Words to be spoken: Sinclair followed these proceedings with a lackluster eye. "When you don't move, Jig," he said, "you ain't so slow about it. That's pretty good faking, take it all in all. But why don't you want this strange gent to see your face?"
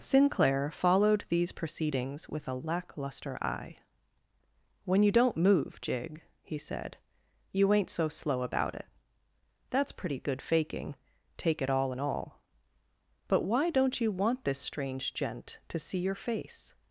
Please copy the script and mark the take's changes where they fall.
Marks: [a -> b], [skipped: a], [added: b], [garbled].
Sinclair followed these proceedings with a lackluster eye. "When you don't move, Jig," he said, "you ain't so slow about it. That's pretty good faking, take it all in all. But why don't you want this strange gent to see your face?"